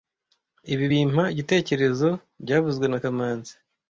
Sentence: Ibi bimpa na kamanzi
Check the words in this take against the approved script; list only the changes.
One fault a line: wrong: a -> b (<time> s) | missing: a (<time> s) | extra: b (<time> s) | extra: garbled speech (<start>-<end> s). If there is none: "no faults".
extra: igitekerezo byavuzwe (1.3 s)